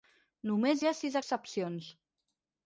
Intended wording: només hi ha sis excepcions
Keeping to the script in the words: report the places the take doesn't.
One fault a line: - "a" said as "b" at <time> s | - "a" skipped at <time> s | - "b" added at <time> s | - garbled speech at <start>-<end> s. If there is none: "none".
none